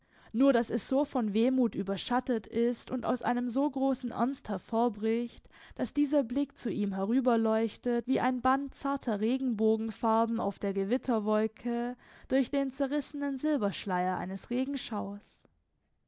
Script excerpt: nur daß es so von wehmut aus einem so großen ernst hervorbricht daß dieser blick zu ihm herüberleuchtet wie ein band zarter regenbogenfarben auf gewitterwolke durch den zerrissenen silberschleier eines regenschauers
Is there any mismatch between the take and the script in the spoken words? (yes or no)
yes